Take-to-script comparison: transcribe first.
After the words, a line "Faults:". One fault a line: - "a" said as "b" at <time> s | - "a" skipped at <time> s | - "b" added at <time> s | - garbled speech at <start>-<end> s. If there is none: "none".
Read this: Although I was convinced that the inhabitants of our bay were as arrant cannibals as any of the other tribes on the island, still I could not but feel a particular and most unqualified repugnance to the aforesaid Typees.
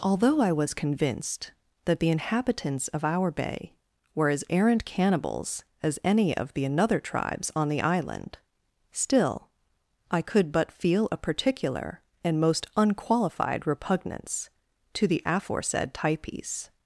Although I was convinced that the inhabitants of our bay were as arrant cannibals as any of the another tribes on the island, still I could but feel a particular and most unqualified repugnance to the aforesaid Typees.
Faults:
- "other" said as "another" at 6.7 s
- "not" skipped at 10.5 s